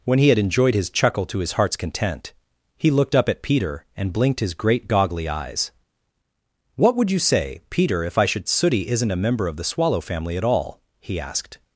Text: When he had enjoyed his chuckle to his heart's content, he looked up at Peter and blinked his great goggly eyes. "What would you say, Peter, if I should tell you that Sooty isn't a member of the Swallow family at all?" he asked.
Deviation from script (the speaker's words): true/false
true